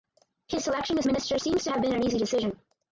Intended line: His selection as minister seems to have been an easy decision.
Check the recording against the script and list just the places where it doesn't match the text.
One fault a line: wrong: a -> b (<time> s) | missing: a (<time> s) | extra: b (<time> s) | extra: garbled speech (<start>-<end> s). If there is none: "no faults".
no faults